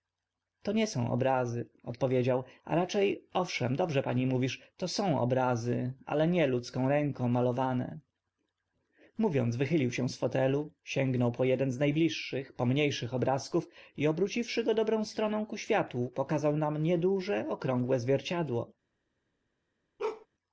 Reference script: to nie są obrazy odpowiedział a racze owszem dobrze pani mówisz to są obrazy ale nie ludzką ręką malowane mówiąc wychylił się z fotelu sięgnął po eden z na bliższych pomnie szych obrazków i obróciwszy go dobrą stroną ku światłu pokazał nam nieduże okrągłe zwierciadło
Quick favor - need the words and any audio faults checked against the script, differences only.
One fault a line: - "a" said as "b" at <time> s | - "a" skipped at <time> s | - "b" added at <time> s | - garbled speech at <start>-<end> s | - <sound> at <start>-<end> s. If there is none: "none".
- bark at 20.0-20.3 s